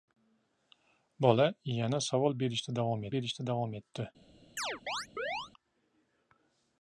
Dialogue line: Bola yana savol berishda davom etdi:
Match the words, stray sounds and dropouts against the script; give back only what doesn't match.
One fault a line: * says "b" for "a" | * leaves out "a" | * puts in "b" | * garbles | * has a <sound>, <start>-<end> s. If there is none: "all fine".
* puts in "berishda davom"
* has a chirp, 4.6-5.5 s